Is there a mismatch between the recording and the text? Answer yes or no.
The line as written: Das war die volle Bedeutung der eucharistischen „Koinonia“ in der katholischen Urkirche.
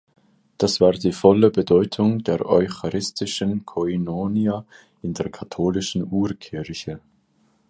no